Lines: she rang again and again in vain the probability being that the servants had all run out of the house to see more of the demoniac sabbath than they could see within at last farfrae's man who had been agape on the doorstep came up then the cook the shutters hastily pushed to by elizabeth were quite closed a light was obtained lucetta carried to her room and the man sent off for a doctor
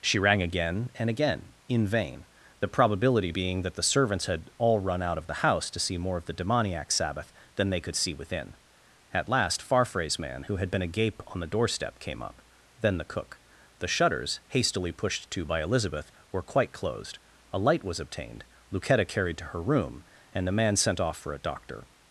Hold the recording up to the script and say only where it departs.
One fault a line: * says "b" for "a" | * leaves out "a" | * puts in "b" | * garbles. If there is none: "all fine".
all fine